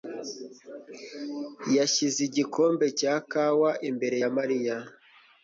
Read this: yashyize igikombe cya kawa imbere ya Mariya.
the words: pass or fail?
pass